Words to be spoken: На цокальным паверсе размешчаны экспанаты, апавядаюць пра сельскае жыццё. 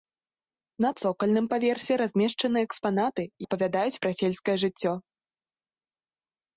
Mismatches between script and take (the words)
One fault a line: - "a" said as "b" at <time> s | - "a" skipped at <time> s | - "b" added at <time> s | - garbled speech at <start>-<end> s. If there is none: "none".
none